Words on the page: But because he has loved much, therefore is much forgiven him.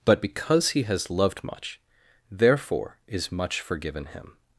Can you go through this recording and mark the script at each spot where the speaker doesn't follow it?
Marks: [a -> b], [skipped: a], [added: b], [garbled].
But because he has loved much, therefore is much forgiven him.